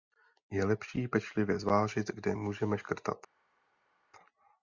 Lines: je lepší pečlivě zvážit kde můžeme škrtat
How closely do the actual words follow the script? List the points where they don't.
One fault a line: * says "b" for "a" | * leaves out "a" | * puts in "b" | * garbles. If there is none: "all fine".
all fine